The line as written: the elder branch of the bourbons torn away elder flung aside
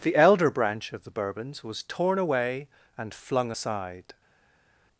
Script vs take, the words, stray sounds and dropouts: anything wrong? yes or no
yes